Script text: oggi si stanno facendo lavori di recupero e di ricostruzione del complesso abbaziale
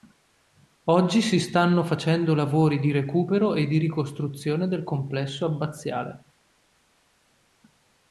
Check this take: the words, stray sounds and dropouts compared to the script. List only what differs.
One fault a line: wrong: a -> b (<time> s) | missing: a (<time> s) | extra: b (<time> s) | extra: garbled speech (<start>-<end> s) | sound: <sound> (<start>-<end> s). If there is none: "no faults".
no faults